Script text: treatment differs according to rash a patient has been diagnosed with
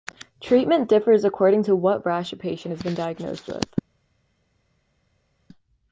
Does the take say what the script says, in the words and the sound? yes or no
no